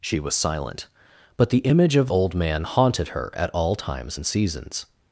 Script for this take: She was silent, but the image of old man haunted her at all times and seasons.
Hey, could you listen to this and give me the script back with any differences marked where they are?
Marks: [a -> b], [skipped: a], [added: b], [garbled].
She was silent, but the image of old man haunted her at all times and seasons.